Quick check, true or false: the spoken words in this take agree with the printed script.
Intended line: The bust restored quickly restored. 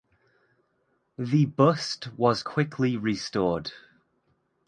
false